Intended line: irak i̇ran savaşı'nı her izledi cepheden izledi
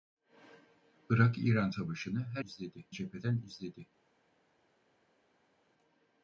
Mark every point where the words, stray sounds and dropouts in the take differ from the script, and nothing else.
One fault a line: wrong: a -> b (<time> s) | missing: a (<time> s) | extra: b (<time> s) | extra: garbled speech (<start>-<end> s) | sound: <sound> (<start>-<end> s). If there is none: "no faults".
no faults